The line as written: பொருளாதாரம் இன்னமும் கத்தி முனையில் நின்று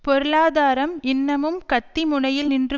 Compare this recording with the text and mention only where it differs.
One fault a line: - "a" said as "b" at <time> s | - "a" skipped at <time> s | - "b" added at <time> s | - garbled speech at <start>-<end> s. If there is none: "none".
none